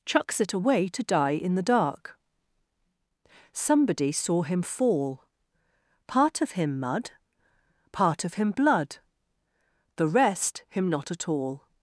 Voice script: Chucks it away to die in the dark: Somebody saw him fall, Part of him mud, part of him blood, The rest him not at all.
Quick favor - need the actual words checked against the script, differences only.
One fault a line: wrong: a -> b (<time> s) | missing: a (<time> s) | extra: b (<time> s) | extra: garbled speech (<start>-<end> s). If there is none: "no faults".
no faults